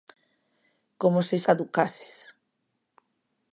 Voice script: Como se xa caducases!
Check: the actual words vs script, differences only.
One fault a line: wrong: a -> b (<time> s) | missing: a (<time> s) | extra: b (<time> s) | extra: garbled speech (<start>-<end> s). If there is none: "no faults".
missing: xa (1.4 s)